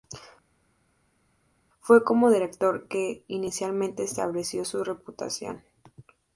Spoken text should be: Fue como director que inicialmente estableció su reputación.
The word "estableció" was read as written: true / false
true